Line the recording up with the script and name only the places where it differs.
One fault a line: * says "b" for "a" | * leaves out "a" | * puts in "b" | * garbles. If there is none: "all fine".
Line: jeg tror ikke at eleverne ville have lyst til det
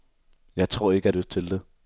* leaves out "eleverne ville have"